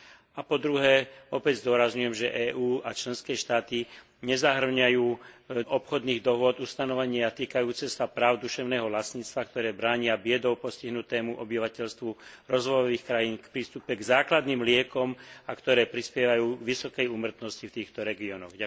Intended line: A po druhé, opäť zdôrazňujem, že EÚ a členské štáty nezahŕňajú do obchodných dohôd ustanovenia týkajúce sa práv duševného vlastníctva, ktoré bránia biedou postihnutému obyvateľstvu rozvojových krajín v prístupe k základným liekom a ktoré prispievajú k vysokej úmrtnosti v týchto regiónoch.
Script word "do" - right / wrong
wrong